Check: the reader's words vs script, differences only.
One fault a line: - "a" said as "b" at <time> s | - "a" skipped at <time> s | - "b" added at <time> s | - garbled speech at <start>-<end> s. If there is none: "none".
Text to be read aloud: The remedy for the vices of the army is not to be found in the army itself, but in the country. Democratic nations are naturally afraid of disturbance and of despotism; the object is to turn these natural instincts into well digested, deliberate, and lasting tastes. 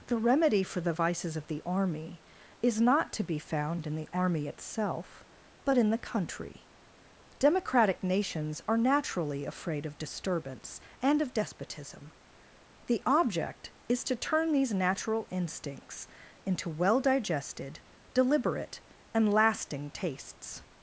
none